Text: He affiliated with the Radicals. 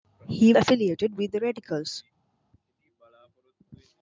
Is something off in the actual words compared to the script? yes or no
no